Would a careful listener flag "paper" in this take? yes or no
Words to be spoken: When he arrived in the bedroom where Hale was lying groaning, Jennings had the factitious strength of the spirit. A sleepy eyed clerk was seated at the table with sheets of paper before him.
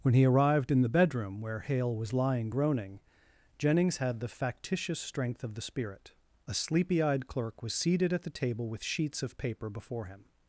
no